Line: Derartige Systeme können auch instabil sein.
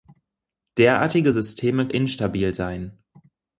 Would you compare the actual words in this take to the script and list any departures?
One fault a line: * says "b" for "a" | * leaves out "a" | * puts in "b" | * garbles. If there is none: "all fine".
* leaves out "können auch"